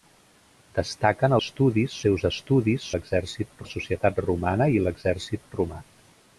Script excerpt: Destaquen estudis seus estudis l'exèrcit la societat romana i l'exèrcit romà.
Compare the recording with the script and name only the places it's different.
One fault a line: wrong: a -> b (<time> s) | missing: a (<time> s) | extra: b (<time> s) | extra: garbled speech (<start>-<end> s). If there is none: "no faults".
no faults